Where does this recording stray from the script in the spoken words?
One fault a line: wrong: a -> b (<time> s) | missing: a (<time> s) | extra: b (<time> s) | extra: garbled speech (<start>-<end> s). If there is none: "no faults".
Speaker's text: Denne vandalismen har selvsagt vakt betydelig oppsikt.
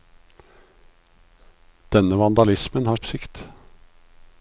missing: selvsagt vakt betydelig (3.0 s)